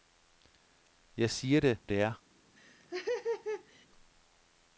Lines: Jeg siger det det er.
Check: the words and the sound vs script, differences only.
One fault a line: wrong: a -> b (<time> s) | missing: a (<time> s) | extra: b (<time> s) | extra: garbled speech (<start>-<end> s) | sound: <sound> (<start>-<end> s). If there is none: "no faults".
sound: laugh (2.6-3.9 s)